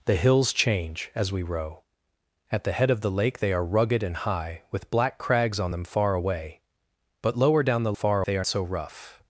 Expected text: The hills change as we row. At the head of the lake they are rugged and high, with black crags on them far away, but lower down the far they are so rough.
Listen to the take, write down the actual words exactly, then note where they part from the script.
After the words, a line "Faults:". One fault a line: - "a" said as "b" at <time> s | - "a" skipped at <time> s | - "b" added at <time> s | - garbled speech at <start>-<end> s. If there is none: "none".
The hills change as we row. At the head of the lake they are rugged and high, with black crags on them far away, but lower down the far they are so rough.
Faults:
none